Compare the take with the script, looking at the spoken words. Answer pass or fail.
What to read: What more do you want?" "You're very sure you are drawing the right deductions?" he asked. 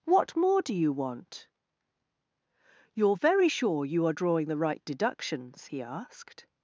pass